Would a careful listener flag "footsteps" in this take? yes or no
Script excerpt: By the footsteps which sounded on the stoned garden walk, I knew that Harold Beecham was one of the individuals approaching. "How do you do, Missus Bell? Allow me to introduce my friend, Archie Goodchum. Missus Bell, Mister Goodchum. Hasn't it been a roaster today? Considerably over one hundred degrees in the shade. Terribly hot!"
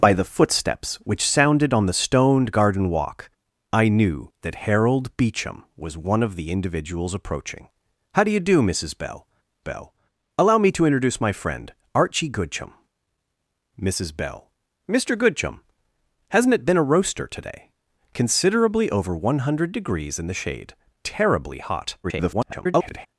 no